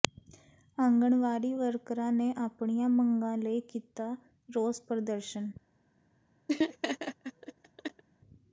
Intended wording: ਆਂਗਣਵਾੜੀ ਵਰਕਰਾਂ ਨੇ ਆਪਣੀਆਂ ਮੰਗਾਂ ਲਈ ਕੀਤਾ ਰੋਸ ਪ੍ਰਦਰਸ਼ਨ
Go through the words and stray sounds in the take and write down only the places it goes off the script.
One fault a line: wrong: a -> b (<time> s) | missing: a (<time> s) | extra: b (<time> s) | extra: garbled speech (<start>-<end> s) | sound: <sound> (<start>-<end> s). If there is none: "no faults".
sound: laugh (6.5-8.0 s)